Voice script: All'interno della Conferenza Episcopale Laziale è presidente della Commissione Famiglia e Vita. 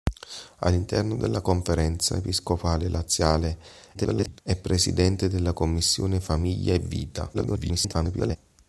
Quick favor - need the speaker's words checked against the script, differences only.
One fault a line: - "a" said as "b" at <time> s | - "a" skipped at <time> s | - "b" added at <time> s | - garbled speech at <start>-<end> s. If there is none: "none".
- garbled speech at 3.9-4.4 s
- garbled speech at 7.3-8.4 s